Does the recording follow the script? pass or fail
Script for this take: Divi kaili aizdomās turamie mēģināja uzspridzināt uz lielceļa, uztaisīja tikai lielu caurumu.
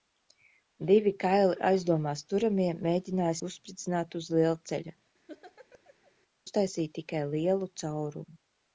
pass